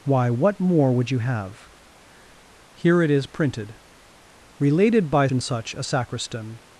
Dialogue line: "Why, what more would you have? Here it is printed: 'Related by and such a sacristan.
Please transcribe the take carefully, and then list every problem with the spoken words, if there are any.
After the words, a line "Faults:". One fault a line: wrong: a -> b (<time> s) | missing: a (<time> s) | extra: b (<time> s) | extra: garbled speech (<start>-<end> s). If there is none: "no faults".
"Why, what more would you have? Here it is printed: 'Related by and such a sacristan.
Faults:
no faults